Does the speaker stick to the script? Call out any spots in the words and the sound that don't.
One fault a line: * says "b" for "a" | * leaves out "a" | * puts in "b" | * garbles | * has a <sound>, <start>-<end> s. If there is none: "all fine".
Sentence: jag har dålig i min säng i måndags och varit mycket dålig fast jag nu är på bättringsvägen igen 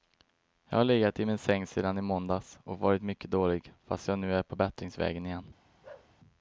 * says "legat" for "dålig"
* puts in "sedan"
* has a bark, 5.8-6.1 s